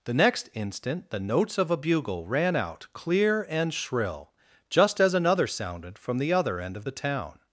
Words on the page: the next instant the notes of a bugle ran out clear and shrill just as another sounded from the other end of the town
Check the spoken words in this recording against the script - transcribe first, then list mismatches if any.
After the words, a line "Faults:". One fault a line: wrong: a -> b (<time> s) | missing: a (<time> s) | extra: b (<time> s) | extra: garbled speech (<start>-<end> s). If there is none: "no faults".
the next instant the notes of a bugle ran out clear and shrill just as another sounded from the other end of the town
Faults:
no faults